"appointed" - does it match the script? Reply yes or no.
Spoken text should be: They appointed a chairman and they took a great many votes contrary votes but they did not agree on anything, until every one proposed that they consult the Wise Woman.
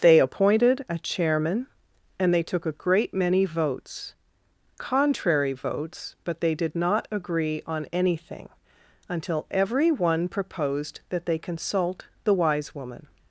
yes